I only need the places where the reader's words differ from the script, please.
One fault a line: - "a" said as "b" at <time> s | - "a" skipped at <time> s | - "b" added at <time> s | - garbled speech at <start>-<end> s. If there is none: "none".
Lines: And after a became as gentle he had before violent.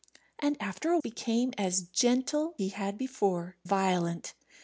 none